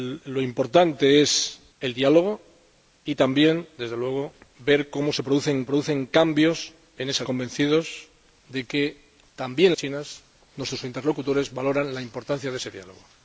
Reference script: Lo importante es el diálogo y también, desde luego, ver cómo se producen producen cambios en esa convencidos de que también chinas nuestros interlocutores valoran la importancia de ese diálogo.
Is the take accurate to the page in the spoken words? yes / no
yes